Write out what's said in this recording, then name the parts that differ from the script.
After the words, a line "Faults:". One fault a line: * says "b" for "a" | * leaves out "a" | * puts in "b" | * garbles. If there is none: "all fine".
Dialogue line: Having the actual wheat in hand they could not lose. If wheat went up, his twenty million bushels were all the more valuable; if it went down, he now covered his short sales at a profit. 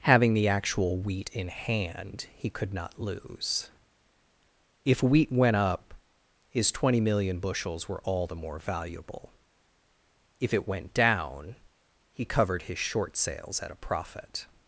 Having the actual wheat in hand he could not lose. If wheat went up, his twenty million bushels were all the more valuable; if it went down, he covered his short sales at a profit.
Faults:
* says "he" for "they"
* leaves out "now"